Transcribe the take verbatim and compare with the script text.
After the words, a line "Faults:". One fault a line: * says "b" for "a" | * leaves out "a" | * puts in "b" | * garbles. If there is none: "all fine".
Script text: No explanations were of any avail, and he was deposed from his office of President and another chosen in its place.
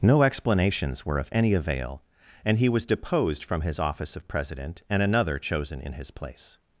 No explanations were of any avail, and he was deposed from his office of President and another chosen in his place.
Faults:
* says "his" for "its"